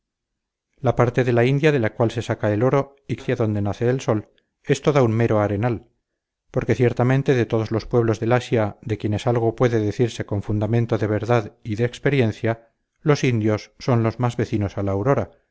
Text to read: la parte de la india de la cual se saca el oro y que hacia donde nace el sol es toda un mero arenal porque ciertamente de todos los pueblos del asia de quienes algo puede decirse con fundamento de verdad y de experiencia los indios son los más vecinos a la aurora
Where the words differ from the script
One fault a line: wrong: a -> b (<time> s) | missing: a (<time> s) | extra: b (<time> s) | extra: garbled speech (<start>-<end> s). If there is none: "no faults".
no faults